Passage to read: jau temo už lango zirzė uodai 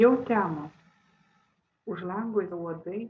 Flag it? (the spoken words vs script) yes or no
yes